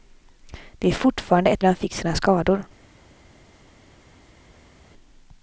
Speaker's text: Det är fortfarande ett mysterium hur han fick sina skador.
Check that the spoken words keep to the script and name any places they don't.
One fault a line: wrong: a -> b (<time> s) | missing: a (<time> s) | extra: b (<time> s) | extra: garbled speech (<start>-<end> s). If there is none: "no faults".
missing: mysterium hur (1.6 s)